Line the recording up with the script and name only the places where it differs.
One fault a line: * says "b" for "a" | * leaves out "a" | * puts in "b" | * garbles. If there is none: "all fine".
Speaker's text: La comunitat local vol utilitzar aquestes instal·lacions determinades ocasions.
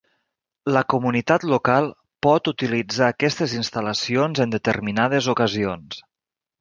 * says "pot" for "vol"
* puts in "en"